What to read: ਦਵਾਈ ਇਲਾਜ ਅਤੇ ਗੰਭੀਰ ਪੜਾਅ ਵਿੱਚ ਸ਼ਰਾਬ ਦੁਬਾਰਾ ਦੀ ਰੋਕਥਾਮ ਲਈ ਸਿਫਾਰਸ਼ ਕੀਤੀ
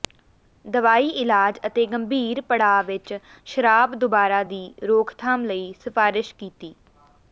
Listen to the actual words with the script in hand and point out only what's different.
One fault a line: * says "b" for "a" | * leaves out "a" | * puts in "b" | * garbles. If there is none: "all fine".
all fine